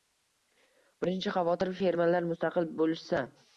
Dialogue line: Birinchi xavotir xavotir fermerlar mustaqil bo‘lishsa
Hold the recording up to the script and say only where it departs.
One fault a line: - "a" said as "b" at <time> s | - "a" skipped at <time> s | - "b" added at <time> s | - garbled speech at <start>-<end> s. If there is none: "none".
- "xavotir" skipped at 1.7 s